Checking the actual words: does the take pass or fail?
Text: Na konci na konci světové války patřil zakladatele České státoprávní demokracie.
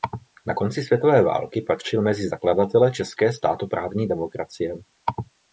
fail